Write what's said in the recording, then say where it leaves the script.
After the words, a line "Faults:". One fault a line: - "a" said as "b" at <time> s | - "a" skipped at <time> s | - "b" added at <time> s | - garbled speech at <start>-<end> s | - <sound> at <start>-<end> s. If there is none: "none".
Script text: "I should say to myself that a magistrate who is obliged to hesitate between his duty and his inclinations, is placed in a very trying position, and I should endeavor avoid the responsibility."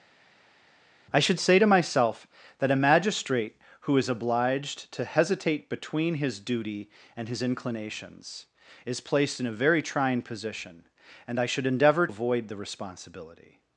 "I should say to myself that a magistrate who is obliged to hesitate between his duty and his inclinations, is placed in a very trying position, and I should endeavor avoid the responsibility."
Faults:
none